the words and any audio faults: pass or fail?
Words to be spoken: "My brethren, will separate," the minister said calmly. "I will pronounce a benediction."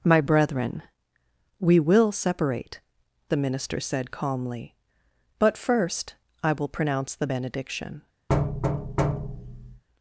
fail